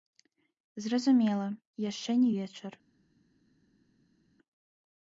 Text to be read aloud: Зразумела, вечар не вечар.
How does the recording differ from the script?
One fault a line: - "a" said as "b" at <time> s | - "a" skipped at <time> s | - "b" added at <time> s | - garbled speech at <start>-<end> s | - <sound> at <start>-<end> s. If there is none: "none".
- "вечар" said as "яшчэ" at 1.9 s